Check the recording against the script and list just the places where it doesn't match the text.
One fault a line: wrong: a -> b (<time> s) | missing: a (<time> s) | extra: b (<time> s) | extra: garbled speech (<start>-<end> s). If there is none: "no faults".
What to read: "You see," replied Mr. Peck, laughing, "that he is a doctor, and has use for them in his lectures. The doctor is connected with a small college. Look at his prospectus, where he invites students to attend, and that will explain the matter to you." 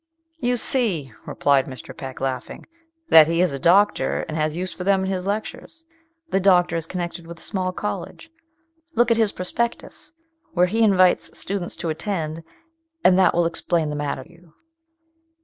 missing: to (14.2 s)